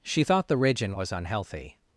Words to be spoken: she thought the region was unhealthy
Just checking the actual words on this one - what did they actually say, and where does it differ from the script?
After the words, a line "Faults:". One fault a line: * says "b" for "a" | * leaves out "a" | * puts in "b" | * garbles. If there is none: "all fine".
she thought the region was unhealthy
Faults:
all fine